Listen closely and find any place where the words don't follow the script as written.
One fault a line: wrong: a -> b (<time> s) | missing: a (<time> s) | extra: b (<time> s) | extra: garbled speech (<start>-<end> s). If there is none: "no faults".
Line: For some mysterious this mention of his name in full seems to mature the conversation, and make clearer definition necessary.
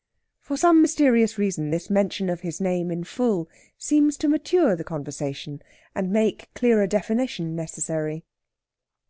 extra: reason (1.4 s)